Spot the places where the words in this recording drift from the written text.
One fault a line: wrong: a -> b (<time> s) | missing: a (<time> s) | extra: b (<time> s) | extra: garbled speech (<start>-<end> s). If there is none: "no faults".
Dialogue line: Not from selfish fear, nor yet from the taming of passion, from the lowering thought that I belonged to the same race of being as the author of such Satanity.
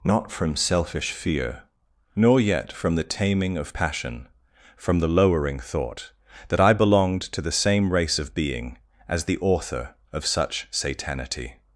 no faults